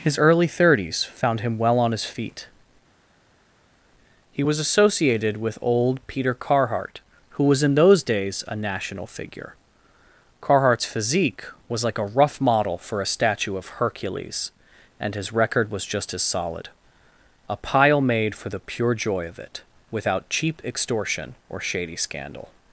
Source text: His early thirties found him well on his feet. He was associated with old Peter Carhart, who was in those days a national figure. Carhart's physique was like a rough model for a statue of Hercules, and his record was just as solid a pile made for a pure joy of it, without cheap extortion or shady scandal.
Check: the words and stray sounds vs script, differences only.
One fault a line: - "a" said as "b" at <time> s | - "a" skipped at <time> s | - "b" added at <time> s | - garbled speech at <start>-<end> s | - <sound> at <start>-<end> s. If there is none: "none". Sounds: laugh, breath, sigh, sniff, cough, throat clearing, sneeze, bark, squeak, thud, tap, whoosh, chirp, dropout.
- "a" said as "the" at 18.5 s